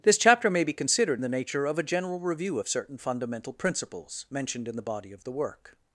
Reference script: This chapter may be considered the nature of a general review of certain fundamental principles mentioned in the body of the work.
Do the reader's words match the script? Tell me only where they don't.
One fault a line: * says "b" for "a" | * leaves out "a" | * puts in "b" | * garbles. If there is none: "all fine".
all fine